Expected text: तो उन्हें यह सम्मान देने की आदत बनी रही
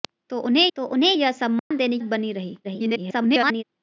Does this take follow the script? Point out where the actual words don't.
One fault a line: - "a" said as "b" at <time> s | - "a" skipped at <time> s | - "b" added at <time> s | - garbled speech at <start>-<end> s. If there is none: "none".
- "तो उन्हें" added at 0.8 s
- "की आदत" skipped at 2.0 s
- garbled speech at 2.6-3.6 s